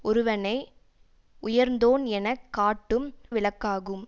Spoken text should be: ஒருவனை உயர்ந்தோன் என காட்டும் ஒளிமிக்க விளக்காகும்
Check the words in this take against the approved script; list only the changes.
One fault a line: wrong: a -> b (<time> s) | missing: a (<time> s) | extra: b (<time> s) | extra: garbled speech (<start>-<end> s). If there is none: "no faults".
missing: ஒளிமிக்க (3.1 s)